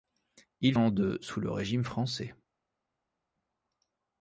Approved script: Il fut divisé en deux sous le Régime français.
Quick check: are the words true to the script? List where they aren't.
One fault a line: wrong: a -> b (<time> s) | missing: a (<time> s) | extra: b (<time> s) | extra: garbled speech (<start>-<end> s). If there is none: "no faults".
missing: fut divisé (0.7 s)